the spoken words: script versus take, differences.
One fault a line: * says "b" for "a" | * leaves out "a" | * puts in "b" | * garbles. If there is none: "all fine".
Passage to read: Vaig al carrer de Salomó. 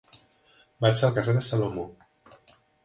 all fine